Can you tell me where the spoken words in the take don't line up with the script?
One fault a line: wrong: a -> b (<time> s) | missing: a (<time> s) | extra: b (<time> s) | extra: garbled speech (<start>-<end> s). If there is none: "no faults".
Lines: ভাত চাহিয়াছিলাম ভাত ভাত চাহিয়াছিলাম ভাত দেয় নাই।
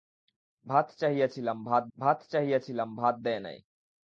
no faults